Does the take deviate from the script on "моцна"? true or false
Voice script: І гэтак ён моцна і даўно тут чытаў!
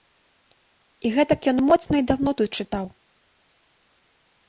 false